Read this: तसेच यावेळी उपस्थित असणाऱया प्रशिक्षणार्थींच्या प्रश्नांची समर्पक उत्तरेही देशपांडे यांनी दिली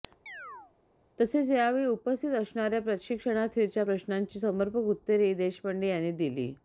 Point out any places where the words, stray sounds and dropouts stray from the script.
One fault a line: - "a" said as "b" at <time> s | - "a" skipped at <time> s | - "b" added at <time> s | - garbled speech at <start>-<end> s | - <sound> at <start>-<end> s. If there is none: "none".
- chirp at 0.3-0.7 s